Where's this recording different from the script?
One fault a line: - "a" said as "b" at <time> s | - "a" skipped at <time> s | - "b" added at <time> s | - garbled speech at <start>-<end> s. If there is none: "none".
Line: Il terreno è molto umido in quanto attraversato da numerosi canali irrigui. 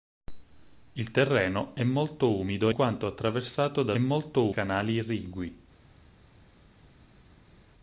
- "in" skipped at 2.7 s
- "numerosi" said as "molto" at 4.0 s